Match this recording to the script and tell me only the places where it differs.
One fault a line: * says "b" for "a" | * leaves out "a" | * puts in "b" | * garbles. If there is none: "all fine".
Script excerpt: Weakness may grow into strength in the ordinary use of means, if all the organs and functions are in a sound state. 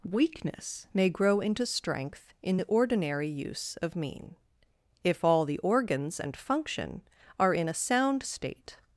* says "mean" for "means"
* says "function" for "functions"